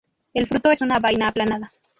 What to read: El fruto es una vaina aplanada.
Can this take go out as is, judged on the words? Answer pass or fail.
pass